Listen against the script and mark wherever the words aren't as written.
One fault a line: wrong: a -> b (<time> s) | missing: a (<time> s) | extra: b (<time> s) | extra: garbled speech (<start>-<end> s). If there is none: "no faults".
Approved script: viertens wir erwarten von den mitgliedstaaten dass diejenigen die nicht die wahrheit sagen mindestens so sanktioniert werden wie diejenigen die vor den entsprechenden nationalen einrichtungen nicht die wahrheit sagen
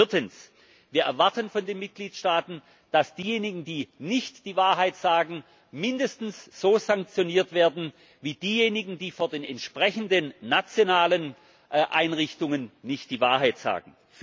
no faults